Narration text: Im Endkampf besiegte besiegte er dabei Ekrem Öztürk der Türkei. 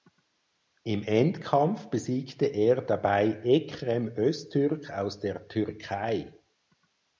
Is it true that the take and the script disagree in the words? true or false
true